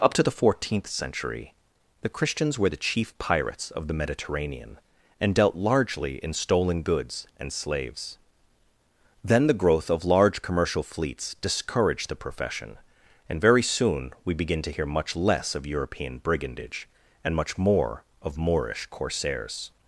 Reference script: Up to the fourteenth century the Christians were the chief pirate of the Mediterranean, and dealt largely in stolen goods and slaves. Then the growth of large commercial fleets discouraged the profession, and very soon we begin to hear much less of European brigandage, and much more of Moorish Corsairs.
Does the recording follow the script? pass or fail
fail